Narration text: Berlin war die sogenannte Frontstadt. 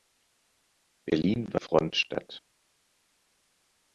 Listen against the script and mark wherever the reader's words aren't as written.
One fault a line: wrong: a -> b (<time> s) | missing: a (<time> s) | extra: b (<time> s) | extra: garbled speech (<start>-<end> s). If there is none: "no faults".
missing: die sogenannte (1.6 s)